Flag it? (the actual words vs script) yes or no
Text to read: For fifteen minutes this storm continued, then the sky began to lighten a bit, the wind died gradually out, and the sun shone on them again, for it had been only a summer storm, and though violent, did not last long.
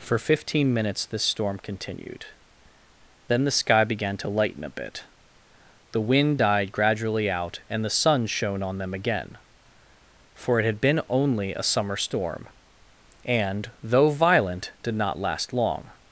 no